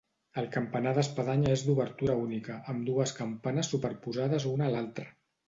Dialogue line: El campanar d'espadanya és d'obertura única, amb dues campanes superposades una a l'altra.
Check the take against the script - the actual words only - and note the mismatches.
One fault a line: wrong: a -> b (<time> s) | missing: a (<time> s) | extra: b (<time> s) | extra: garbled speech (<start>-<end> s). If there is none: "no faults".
no faults